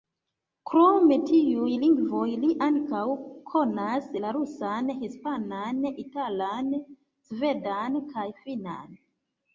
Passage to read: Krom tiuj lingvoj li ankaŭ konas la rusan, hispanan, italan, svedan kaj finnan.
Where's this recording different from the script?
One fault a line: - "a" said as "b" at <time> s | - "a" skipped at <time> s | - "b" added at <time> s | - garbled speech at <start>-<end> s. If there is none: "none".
none